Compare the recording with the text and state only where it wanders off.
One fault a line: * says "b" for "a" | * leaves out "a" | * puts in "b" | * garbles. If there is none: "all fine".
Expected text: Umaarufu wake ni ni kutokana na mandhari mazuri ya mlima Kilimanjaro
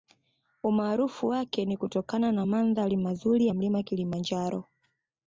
* leaves out "ni"